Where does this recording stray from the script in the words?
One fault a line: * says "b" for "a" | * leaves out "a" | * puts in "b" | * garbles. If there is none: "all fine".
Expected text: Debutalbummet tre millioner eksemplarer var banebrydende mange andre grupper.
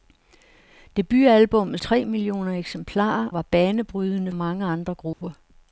all fine